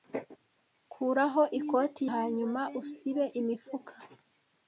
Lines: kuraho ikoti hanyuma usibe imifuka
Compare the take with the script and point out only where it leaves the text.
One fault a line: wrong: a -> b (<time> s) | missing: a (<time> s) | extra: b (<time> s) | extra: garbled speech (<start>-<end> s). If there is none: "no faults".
no faults